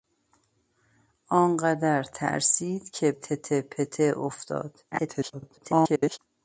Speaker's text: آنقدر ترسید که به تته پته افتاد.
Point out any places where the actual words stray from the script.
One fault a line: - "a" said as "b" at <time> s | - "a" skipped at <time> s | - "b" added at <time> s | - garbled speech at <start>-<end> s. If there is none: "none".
- "به" skipped at 3.1 s
- garbled speech at 4.9-6.2 s